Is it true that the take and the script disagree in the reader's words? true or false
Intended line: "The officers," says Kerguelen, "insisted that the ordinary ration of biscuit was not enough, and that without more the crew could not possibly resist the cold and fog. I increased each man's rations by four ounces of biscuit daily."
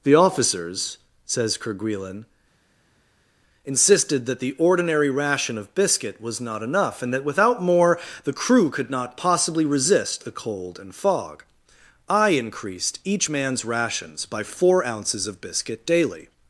false